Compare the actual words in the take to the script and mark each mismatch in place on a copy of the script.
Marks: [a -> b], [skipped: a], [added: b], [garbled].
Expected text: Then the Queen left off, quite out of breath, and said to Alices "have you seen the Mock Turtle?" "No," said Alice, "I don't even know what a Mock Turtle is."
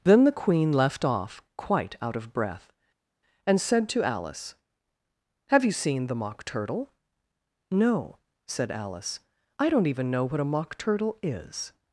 Then the Queen left off, quite out of breath, and said to [Alices -> Alice] "have you seen the Mock Turtle?" "No," said Alice, "I don't even know what a Mock Turtle is."